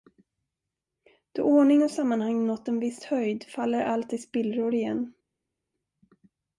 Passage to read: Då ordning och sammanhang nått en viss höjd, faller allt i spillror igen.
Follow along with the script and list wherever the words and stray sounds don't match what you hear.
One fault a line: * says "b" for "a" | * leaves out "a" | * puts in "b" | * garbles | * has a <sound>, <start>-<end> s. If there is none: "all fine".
all fine